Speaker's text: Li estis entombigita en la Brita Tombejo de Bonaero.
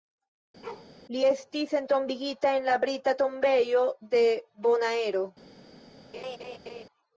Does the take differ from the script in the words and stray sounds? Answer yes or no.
yes